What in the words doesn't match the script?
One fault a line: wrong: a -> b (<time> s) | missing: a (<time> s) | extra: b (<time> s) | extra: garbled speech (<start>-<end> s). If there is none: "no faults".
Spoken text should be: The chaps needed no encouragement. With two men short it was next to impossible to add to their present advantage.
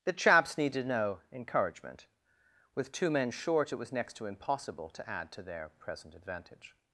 no faults